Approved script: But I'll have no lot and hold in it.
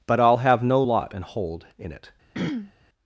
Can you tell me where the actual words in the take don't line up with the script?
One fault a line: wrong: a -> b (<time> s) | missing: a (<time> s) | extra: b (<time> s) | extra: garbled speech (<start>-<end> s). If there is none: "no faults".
no faults